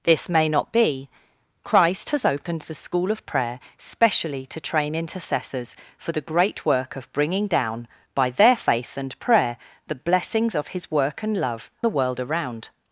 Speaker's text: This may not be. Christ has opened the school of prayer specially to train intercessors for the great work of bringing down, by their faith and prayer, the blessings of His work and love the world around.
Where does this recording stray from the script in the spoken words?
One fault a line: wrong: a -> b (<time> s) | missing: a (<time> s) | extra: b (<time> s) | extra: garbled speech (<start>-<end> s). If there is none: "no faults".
no faults